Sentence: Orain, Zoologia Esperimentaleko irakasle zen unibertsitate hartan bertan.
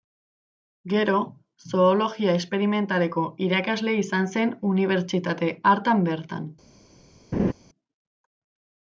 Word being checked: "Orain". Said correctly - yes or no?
no